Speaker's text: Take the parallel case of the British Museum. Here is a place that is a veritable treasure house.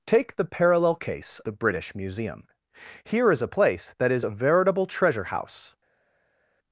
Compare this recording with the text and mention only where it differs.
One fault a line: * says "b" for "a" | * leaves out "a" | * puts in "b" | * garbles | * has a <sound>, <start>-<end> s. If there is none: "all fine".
* leaves out "of"